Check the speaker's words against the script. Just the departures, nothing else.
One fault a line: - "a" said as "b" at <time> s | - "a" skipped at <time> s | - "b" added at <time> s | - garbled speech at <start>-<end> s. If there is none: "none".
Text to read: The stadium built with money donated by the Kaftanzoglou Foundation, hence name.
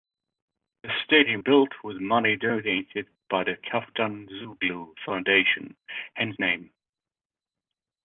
none